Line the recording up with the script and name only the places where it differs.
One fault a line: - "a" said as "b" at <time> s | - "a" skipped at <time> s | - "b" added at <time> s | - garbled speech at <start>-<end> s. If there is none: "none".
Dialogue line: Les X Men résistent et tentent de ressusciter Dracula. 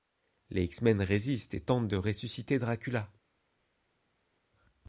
none